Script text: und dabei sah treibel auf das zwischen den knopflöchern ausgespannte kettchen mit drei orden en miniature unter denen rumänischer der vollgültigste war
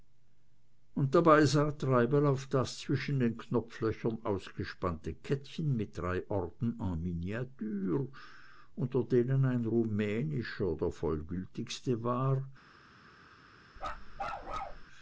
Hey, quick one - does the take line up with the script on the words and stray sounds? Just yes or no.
no